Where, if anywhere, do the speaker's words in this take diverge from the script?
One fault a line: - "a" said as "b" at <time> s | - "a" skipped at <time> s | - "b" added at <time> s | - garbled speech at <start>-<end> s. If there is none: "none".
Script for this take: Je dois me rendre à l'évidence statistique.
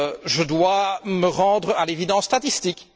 none